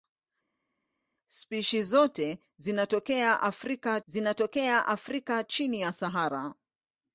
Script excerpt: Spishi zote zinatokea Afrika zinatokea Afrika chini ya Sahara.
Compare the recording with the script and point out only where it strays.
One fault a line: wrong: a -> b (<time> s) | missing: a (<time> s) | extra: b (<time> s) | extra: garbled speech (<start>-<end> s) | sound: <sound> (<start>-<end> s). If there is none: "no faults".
no faults